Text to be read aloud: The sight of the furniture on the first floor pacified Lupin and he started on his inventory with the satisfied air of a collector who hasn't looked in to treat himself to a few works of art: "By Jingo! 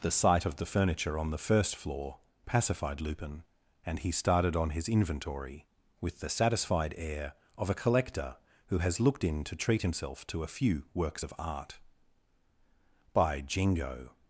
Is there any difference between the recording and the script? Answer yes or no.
yes